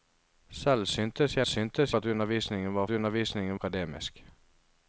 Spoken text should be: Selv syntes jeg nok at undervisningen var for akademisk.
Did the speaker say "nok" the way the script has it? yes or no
no